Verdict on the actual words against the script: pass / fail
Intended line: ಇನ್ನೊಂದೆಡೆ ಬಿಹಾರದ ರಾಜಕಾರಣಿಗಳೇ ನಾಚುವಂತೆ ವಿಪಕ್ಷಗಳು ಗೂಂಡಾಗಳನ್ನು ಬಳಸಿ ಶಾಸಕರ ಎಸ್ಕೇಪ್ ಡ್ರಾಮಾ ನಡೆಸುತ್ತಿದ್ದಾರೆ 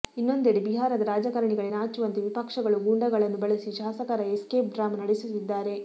pass